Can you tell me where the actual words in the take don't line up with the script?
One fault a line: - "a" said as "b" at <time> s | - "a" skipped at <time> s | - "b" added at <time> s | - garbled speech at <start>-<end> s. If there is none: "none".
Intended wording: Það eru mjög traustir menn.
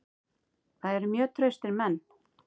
none